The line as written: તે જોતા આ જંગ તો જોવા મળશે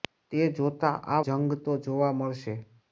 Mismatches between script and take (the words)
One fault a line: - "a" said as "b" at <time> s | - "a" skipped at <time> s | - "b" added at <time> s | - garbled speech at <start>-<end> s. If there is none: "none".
none